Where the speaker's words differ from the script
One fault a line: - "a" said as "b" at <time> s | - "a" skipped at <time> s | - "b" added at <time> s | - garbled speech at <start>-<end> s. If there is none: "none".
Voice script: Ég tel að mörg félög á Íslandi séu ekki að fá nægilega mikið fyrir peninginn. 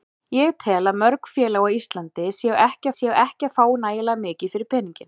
- "séu ekki" added at 3.0 s